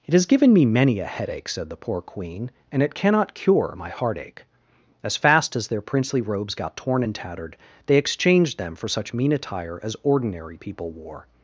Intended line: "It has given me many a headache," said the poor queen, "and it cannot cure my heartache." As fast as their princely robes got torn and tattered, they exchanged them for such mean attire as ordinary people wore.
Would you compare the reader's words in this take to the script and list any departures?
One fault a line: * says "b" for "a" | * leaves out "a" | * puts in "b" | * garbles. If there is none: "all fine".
all fine